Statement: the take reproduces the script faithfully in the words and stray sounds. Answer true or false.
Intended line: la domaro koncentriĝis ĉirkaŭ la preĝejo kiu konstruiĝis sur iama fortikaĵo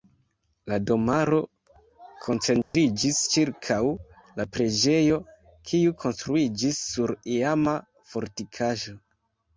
false